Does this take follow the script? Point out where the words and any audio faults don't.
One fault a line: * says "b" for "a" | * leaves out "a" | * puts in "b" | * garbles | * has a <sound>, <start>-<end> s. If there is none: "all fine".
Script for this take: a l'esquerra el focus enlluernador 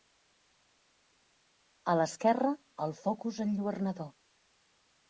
all fine